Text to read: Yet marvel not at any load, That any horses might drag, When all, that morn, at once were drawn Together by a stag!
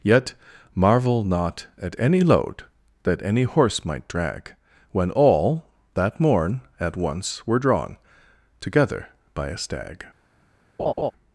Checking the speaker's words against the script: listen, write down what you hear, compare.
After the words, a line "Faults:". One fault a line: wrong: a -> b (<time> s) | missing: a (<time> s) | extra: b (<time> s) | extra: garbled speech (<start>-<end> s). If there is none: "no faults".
Yet marvel not at any load, That any horse might drag, When all, that morn, at once were drawn Together by a stag!
Faults:
wrong: horses -> horse (3.4 s)